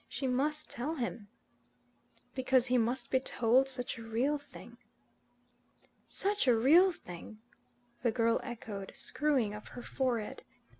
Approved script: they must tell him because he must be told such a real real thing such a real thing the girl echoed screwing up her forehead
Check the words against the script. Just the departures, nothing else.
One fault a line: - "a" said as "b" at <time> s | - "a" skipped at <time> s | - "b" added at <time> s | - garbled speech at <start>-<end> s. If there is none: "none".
- "they" said as "she" at 0.1 s
- "real" skipped at 4.4 s